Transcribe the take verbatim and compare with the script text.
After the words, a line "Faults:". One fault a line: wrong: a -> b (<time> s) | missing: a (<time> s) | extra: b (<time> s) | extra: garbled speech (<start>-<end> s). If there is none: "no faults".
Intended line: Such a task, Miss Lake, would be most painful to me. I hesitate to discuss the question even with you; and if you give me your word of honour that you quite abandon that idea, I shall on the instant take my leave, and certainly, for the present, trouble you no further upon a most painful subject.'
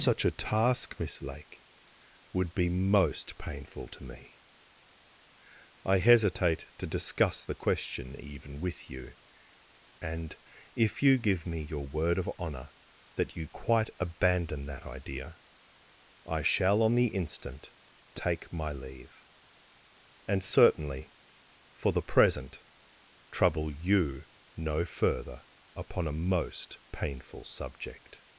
Such a task, Miss Lake, would be most painful to me. I hesitate to discuss the question even with you; and if you give me your word of honour that you quite abandon that idea, I shall on the instant take my leave, and certainly, for the present, trouble you no further upon a most painful subject.'
Faults:
no faults